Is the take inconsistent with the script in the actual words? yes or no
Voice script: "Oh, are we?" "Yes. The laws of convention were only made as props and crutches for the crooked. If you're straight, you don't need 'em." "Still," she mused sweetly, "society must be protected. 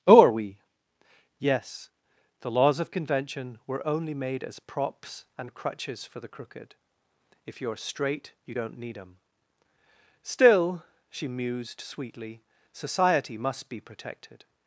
no